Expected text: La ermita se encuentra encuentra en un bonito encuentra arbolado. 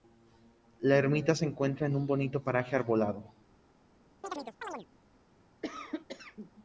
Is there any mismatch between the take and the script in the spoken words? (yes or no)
yes